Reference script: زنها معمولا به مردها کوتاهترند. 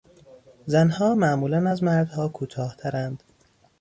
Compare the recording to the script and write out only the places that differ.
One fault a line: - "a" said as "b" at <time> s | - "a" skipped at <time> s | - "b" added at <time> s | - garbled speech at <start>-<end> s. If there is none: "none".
- "به" said as "از" at 1.7 s